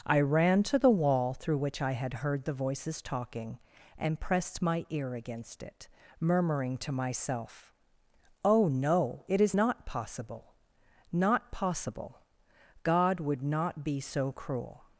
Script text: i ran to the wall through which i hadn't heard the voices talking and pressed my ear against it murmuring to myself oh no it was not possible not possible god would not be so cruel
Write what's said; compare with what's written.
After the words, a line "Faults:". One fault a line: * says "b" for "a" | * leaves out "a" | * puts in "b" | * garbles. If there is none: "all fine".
i ran to the wall through which i had heard the voices talking and pressed my ear against it murmuring to myself oh no it is not possible not possible god would not be so cruel
Faults:
* says "had" for "hadn't"
* says "is" for "was"